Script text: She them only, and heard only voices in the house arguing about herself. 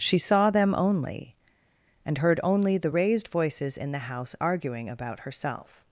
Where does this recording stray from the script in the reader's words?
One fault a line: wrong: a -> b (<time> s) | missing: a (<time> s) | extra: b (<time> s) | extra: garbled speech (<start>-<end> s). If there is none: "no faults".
extra: saw (0.2 s)
extra: the raised (2.8 s)